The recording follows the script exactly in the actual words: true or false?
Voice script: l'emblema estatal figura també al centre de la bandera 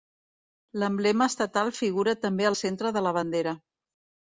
true